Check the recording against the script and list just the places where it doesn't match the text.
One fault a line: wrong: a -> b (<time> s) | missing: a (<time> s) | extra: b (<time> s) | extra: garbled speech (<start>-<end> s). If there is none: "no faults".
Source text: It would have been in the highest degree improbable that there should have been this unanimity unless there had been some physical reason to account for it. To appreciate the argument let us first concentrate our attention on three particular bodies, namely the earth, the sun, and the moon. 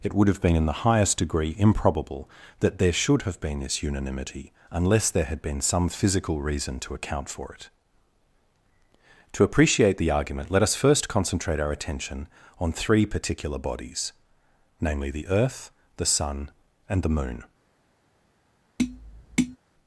no faults